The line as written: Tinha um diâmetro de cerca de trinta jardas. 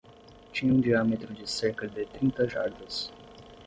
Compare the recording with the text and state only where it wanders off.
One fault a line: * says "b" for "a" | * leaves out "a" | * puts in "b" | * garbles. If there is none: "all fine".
all fine